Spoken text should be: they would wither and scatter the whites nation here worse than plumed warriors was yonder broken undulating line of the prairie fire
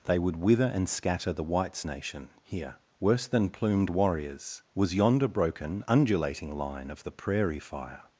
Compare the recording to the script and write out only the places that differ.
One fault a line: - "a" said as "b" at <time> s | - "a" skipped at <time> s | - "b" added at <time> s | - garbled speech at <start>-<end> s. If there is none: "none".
none